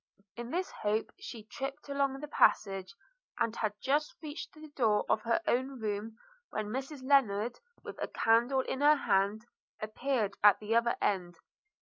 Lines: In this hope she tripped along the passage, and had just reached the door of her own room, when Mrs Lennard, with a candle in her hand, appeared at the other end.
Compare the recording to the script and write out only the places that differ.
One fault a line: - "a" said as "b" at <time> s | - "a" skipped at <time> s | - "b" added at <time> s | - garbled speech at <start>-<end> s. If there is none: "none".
none